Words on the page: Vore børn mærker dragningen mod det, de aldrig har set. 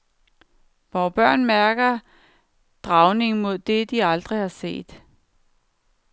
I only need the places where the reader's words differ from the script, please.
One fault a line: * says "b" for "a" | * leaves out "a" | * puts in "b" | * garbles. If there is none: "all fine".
all fine